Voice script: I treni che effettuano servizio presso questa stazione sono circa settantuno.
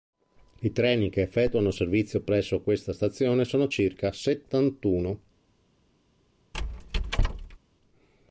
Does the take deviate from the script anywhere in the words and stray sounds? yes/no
yes